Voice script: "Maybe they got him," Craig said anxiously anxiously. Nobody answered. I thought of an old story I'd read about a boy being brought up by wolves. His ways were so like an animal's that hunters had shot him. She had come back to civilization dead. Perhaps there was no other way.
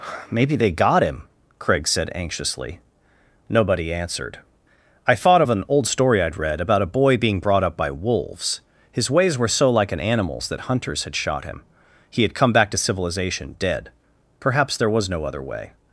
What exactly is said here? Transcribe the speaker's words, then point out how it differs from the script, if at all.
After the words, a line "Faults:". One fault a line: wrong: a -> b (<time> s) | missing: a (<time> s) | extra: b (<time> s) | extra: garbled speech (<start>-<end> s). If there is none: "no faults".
"Maybe they got him," Craig said anxiously. Nobody answered. I thought of an old story I'd read about a boy being brought up by wolves. His ways were so like an animal's that hunters had shot him. He had come back to civilization dead. Perhaps there was no other way.
Faults:
missing: anxiously (2.8 s)
wrong: She -> He (12.1 s)